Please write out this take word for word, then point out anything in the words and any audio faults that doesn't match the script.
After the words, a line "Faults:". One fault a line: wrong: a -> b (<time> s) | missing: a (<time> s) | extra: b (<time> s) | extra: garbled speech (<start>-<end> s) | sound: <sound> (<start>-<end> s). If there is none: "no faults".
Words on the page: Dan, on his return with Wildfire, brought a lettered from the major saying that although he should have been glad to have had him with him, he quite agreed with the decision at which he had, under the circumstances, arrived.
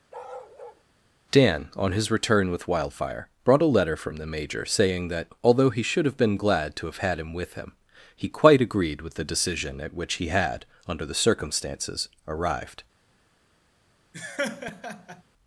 Dan, on his return with Wildfire, brought a letter from the major saying that although he should have been glad to have had him with him, he quite agreed with the decision at which he had, under the circumstances, arrived.
Faults:
sound: bark (0.1-0.8 s)
wrong: lettered -> letter (3.8 s)
sound: laugh (14.1-15.2 s)